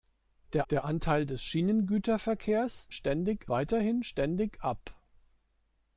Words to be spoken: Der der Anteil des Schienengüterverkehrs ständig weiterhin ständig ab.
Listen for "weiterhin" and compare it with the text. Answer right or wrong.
right